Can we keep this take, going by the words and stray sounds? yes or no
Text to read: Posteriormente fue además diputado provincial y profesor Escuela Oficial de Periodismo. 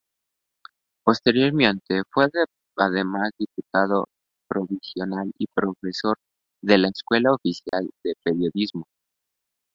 no